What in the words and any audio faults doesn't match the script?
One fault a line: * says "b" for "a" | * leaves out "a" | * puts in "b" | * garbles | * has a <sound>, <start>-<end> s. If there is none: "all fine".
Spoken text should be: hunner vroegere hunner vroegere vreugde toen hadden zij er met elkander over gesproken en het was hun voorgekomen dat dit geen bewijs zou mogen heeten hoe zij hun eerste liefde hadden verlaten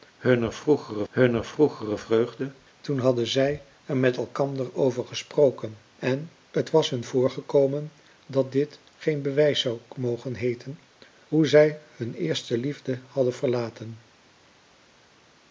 all fine